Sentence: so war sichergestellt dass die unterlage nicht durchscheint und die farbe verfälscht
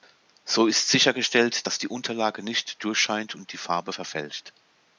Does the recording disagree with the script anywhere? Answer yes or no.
yes